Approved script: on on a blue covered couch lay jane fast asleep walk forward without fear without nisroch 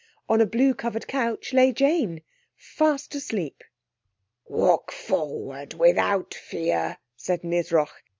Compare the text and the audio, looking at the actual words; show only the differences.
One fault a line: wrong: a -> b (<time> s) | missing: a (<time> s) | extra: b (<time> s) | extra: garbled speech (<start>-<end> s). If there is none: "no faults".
missing: on (0.4 s)
wrong: without -> said (7.2 s)